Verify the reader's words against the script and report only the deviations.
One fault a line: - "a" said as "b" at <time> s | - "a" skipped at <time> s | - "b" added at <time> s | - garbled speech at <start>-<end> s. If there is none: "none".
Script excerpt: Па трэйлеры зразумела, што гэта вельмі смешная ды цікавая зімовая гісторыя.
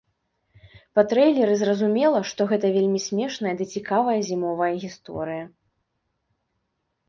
none